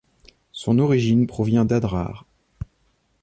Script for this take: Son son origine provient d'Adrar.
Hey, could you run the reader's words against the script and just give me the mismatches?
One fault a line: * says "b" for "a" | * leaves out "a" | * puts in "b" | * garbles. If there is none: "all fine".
* leaves out "son"